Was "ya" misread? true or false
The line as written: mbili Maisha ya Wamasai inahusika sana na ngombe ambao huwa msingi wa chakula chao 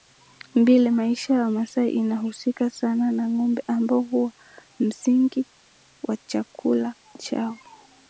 false